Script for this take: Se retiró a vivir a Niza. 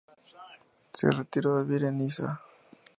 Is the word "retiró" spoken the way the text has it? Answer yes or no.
yes